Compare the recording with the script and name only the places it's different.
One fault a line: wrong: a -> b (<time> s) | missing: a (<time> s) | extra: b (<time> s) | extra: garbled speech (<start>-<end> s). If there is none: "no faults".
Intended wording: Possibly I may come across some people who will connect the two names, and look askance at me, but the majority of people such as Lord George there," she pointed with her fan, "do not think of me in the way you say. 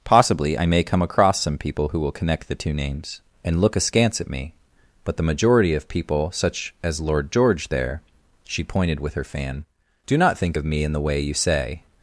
no faults